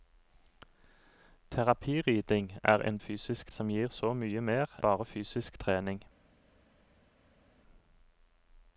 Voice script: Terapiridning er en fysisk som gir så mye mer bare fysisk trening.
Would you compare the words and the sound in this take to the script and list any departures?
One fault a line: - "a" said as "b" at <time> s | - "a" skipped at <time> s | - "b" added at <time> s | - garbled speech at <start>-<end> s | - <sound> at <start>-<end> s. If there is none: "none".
none